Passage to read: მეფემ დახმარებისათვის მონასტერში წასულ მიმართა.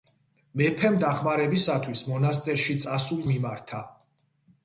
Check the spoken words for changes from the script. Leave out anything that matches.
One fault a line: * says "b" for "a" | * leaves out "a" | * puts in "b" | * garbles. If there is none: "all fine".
all fine